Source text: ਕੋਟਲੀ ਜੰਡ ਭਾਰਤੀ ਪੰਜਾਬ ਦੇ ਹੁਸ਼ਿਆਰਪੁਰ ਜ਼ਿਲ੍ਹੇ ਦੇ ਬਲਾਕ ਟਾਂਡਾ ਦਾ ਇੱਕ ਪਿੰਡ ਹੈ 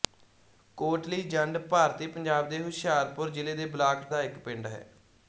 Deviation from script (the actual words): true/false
true